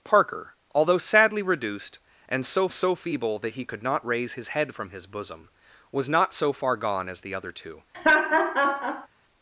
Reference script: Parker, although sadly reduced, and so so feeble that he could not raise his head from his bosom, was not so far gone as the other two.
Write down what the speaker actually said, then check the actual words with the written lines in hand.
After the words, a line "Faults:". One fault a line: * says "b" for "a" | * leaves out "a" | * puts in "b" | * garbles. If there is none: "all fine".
Parker, although sadly reduced, and so so feeble that he could not raise his head from his bosom, was not so far gone as the other two.
Faults:
all fine